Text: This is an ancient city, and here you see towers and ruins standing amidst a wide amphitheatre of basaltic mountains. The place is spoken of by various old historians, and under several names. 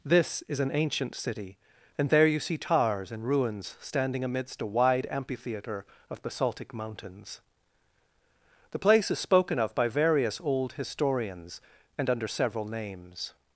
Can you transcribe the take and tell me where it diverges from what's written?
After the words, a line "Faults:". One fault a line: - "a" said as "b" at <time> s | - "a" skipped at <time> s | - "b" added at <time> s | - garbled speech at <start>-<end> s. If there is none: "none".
This is an ancient city, and there you see towers and ruins standing amidst a wide amphitheatre of basaltic mountains. The place is spoken of by various old historians, and under several names.
Faults:
- "here" said as "there" at 2.1 s